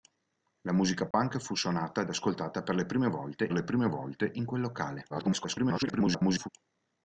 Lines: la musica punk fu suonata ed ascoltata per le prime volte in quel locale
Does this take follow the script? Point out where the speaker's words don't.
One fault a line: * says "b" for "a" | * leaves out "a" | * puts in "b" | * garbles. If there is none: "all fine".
* puts in "le prime volte"
* garbles